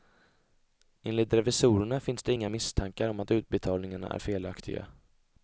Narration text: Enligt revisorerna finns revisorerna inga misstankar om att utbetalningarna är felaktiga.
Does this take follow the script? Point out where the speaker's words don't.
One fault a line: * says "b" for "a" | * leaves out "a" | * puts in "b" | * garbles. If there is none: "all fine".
* says "det" for "revisorerna"